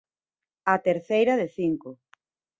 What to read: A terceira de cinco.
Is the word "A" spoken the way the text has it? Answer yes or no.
yes